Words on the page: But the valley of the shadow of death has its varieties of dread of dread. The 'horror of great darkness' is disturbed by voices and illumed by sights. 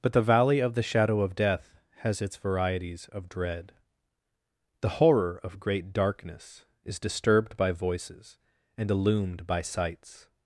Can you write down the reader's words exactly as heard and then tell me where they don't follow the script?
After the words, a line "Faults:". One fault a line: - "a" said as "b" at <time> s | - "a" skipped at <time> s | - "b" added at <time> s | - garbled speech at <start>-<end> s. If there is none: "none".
But the valley of the shadow of death has its varieties of dread. The 'horror of great darkness' is disturbed by voices and illumed by sights.
Faults:
- "of dread" skipped at 3.7 s